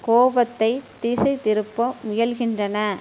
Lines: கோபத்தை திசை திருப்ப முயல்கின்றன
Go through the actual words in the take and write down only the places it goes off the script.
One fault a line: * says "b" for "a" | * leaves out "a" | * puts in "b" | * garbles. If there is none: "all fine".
all fine